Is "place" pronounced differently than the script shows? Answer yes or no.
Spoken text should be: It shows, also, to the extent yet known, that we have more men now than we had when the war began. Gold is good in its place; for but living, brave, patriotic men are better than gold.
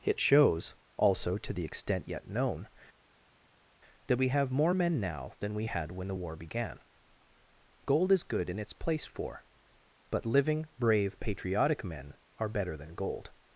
no